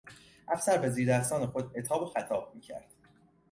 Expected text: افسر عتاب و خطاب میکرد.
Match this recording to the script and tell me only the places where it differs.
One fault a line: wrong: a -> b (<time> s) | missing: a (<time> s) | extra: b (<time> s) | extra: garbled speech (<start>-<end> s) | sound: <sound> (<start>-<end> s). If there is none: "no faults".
extra: به زیردستان خود (0.8 s)